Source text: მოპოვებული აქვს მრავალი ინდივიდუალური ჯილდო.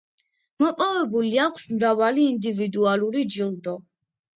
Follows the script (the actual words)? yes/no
yes